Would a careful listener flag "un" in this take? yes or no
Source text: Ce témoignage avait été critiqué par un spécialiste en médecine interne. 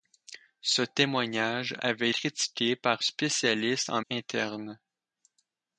yes